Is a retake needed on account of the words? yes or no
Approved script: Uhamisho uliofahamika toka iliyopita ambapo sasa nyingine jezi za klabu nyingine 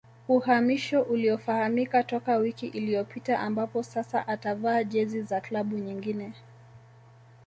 yes